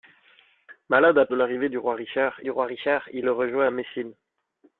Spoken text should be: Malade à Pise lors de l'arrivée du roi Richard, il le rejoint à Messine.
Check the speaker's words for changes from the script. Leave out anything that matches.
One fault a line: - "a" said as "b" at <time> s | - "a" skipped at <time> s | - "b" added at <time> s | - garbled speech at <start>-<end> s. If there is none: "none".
- "Pise lors de l'arrivée" said as "De l'arrivée du roi Richard" at 1.3 s